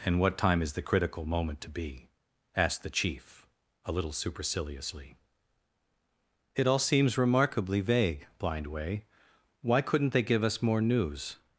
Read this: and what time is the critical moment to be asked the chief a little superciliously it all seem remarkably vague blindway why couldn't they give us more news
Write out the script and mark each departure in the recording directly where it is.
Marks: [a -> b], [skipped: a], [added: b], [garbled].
and what time is the critical moment to be asked the chief a little superciliously it all [seem -> seems] remarkably vague blindway why couldn't they give us more news